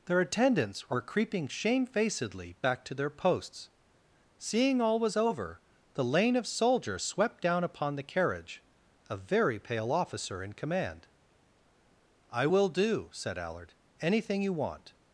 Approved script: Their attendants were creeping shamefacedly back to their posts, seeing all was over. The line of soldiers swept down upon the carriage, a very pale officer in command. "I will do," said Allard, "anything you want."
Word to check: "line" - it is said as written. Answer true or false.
false